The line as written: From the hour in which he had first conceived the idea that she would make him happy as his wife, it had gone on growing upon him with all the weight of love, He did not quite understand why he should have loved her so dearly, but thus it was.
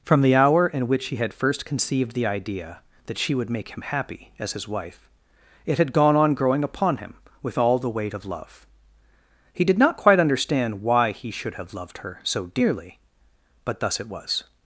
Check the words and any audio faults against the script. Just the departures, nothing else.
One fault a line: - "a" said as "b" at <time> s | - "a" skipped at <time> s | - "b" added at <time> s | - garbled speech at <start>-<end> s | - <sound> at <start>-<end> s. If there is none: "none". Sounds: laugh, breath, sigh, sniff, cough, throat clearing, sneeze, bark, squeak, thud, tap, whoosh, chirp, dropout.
none